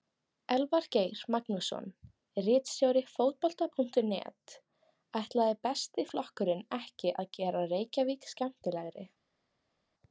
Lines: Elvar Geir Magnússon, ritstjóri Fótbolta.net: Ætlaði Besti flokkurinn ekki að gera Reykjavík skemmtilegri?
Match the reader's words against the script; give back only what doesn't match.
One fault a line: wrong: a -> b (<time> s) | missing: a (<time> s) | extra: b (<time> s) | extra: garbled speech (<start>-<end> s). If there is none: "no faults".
no faults